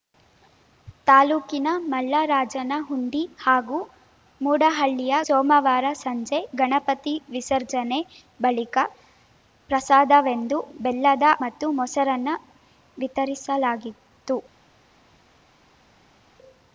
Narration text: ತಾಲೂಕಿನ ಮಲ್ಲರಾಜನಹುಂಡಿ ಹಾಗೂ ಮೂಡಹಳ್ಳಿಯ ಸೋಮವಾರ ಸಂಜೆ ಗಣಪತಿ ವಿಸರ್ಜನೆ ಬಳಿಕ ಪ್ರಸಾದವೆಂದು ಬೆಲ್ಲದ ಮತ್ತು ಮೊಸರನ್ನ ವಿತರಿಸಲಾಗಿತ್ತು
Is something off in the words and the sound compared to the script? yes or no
no